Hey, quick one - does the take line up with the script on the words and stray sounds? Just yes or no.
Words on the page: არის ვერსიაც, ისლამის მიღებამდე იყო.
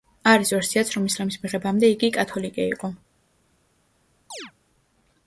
no